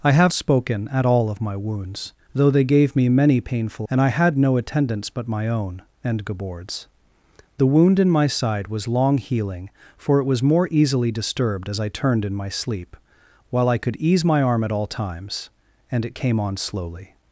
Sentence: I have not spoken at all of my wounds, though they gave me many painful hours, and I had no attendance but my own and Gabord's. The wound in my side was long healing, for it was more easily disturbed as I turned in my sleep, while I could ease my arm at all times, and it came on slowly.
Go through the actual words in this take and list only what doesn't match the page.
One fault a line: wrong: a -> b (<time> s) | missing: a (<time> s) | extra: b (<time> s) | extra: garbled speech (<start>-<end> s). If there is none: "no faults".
missing: not (0.3 s)
missing: hours (3.9 s)